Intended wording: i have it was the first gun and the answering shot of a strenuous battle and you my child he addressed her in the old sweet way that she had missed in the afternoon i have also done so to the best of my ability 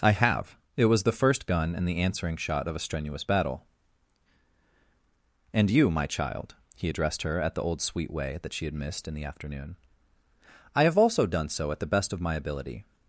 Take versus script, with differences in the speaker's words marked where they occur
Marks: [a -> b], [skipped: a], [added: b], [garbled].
i have it was the first gun and the answering shot of a strenuous battle and you my child he addressed her [in -> at] the old sweet way that she had missed in the afternoon i have also done so [to -> at] the best of my ability